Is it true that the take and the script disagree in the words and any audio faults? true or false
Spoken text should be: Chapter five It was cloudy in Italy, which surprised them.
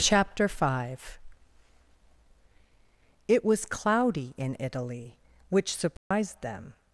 true